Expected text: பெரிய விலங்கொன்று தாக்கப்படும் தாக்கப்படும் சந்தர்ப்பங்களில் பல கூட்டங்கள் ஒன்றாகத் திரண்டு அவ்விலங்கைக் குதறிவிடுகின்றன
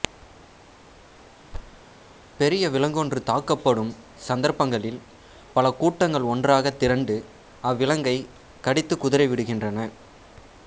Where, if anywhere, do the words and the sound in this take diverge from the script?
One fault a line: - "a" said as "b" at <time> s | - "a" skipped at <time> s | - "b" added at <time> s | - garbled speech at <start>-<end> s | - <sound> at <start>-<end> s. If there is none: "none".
- thud at 1.5-1.8 s
- "தாக்கப்படும்" skipped at 3.9 s
- "கடித்துக்" added at 8.6 s